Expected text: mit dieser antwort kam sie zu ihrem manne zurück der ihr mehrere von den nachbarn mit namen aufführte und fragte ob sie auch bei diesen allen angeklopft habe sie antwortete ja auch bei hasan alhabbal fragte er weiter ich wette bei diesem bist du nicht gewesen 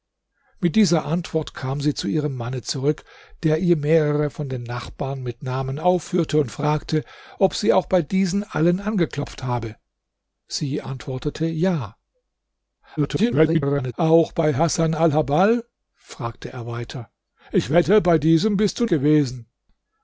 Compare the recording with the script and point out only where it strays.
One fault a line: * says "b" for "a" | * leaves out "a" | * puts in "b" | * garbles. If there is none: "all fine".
* garbles
* leaves out "nicht"